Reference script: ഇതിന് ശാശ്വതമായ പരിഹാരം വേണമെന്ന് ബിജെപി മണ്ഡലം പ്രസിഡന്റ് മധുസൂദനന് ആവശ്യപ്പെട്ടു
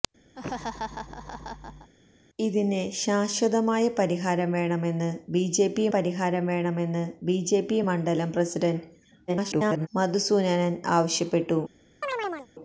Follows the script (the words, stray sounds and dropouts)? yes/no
no